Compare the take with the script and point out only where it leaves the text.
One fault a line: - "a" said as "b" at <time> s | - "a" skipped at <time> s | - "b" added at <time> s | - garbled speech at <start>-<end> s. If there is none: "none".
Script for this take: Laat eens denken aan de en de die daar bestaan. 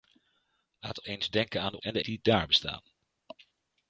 none